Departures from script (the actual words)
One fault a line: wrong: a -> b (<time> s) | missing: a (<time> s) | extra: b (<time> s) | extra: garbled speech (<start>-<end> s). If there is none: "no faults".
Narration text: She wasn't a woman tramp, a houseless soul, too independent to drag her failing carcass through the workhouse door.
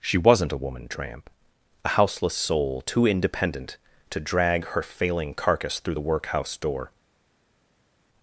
no faults